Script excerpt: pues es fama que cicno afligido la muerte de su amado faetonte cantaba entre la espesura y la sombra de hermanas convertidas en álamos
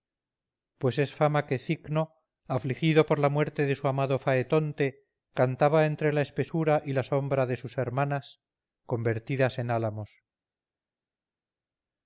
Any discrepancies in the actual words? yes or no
yes